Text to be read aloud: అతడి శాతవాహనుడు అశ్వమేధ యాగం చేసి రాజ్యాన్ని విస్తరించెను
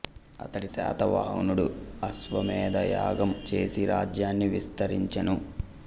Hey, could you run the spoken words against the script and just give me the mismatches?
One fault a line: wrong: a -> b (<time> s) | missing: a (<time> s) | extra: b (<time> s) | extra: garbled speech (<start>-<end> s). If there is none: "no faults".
no faults